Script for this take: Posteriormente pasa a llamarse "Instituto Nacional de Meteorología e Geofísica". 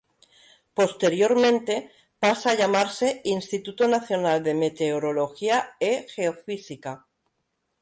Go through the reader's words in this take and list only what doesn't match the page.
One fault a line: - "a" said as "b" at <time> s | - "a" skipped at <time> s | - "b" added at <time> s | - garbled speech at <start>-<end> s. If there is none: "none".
none